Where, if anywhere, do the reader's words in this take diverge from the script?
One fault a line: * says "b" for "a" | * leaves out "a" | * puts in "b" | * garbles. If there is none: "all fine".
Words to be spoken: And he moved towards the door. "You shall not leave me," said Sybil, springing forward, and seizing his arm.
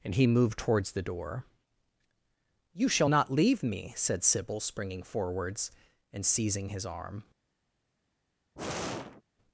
* says "forwards" for "forward"